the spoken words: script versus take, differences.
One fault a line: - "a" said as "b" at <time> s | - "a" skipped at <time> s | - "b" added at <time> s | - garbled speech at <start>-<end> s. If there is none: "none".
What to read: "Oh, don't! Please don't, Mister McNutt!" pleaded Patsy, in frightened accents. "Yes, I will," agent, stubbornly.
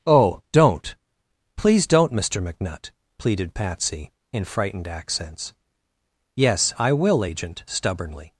none